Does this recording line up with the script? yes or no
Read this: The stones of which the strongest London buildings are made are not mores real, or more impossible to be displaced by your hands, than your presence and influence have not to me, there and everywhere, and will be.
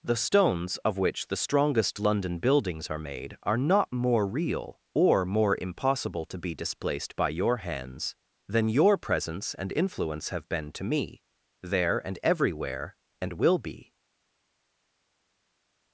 no